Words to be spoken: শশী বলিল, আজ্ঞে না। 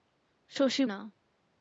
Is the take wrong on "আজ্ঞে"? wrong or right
wrong